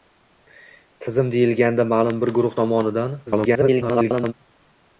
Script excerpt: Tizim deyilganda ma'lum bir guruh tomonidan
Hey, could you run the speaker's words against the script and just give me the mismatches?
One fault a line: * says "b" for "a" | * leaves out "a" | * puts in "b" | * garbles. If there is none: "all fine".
* garbles